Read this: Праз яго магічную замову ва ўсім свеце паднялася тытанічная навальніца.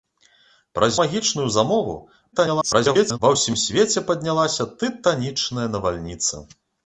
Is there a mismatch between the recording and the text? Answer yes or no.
yes